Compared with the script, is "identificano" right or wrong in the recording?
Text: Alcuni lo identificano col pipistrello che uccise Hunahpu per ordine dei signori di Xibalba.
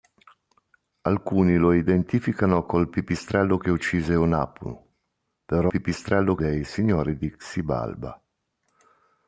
right